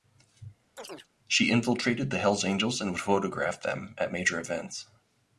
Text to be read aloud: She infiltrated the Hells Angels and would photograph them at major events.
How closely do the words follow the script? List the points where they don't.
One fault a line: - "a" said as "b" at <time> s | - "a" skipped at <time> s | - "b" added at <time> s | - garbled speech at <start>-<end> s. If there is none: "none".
none